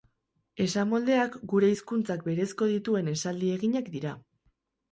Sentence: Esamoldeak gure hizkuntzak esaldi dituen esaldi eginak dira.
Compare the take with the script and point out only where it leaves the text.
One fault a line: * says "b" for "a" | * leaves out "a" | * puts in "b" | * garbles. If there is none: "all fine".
* says "berezko" for "esaldi"